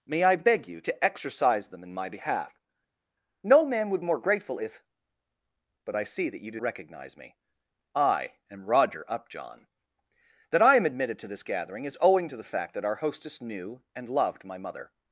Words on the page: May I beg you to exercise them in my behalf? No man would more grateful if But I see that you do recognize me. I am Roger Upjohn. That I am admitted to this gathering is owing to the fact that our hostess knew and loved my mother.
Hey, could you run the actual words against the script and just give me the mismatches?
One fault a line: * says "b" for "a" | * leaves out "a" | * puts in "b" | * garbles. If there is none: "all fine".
all fine